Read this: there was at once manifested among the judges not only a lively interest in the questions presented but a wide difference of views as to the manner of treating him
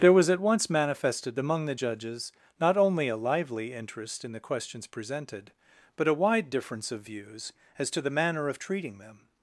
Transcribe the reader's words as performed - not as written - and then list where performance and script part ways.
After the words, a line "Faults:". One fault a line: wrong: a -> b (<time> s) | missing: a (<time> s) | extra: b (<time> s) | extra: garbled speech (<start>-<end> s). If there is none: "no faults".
there was at once manifested among the judges not only a lively interest in the questions presented but a wide difference of views as to the manner of treating them
Faults:
wrong: him -> them (9.0 s)